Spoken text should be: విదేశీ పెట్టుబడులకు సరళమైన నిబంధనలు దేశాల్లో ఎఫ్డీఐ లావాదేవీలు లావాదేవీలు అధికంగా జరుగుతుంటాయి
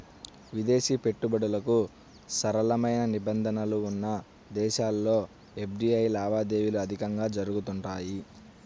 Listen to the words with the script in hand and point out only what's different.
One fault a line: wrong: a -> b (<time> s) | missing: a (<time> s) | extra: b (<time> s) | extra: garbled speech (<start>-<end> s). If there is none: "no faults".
extra: ఉన్న (3.9 s)
missing: లావాదేవీలు (6.8 s)